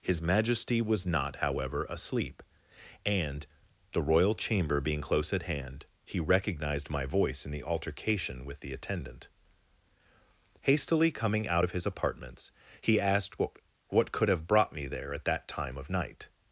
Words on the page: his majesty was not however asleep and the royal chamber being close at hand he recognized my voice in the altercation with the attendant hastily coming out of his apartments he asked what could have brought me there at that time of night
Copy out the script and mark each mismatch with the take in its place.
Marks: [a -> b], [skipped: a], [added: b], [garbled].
his majesty was not however asleep and the royal chamber being close at hand he recognized my voice in the altercation with the attendant hastily coming out of his apartments he asked what [added: what] could have brought me there at that time of night